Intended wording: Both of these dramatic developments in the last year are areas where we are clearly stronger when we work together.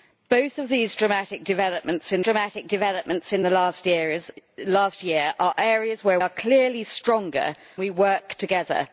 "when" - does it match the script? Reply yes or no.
no